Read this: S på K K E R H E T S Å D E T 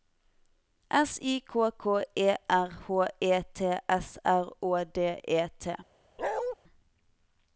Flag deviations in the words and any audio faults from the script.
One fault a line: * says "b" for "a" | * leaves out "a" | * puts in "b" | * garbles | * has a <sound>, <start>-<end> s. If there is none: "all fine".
* says "I" for "på"
* puts in "R"
* has a bark, 6.2-6.6 s